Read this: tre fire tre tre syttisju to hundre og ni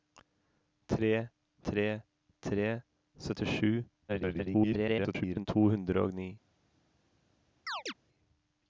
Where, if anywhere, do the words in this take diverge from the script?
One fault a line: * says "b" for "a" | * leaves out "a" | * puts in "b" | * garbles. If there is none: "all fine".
* leaves out "fire"
* garbles